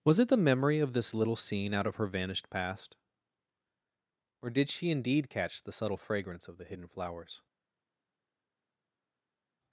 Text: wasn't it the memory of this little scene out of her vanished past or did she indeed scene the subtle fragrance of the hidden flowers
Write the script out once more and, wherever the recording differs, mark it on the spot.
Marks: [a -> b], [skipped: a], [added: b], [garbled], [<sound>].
[wasn't -> was] it the memory of this little scene out of her vanished past or did she indeed [scene -> catch] the subtle fragrance of the hidden flowers